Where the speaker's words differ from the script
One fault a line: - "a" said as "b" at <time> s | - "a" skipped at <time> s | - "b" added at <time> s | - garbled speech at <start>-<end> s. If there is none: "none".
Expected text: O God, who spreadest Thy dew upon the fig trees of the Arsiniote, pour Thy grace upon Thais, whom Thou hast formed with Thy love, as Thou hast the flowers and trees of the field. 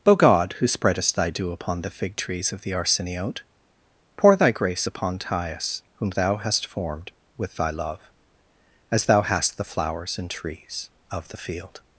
none